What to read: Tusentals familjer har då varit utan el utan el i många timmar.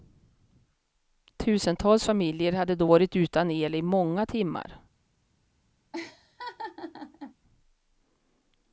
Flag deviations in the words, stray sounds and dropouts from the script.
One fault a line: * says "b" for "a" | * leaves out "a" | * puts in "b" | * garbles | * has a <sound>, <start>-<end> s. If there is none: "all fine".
* says "hade" for "har"
* leaves out "utan el"
* has a laugh, 5.9-7.4 s